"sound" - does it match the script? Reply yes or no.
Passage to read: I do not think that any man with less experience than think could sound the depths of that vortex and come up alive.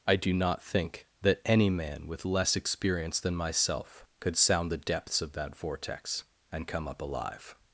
yes